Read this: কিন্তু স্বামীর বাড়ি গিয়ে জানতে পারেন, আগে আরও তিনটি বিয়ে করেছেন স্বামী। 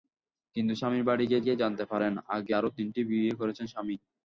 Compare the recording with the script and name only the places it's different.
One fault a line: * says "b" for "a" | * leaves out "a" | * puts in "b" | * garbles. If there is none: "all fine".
* puts in "গিয়ে"